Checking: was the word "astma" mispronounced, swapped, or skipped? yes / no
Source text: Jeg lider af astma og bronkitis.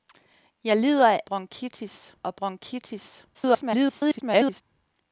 yes